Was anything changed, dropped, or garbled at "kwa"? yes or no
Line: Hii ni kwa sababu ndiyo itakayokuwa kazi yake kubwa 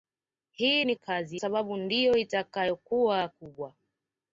yes